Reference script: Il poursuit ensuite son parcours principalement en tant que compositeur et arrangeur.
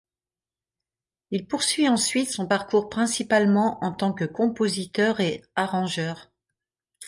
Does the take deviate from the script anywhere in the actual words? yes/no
no